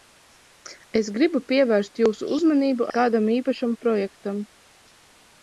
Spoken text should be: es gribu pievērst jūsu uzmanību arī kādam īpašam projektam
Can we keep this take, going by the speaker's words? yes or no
no